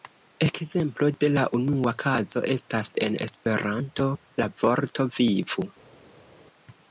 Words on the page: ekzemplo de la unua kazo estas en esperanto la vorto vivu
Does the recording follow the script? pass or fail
pass